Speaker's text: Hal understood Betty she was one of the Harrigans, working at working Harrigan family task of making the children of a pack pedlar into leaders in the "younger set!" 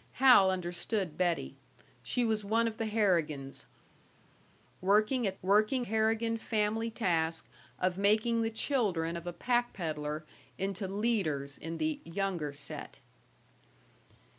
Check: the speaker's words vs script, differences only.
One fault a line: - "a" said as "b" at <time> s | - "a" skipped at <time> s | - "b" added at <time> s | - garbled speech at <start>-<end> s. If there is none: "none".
none